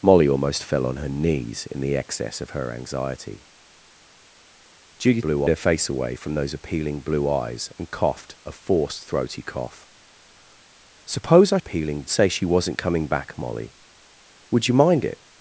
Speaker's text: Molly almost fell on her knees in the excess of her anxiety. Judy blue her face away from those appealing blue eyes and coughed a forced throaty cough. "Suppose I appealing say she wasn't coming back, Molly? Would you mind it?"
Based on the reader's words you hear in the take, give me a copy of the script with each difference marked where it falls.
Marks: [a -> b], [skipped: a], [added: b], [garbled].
Molly almost fell on her knees in the excess of her anxiety. Judy blue her face away from those appealing blue eyes and coughed a forced throaty cough. "Suppose I appealing say she wasn't coming back, Molly? Would you mind it?"